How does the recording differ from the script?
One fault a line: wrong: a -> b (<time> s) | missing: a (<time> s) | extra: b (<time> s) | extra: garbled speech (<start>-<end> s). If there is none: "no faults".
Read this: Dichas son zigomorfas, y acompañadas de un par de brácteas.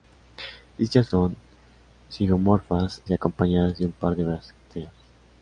no faults